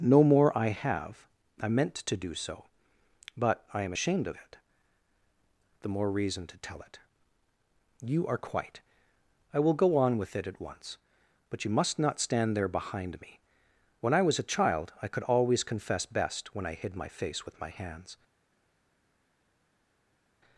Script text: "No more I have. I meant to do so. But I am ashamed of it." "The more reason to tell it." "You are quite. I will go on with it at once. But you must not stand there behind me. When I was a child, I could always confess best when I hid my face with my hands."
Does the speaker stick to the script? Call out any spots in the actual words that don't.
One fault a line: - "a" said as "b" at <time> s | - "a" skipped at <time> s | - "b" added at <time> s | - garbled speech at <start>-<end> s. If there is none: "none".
none